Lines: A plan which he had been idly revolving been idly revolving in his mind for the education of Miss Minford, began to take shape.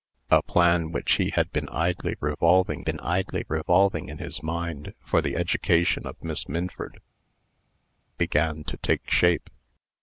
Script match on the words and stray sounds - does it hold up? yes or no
yes